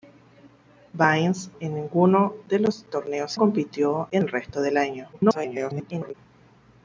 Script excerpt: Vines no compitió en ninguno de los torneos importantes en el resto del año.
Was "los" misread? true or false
false